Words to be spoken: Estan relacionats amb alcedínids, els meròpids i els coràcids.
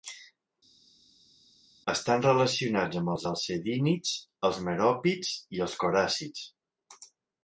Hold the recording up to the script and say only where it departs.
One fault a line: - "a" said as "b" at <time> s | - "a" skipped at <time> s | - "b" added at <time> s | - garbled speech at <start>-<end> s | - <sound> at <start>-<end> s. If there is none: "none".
- "els" added at 3.1 s